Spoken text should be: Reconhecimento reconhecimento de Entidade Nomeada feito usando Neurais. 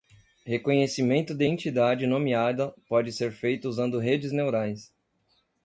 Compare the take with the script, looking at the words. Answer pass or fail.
fail